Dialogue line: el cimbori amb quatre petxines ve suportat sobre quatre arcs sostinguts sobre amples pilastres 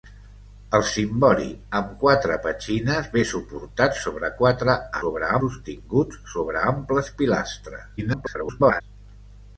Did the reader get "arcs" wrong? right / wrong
wrong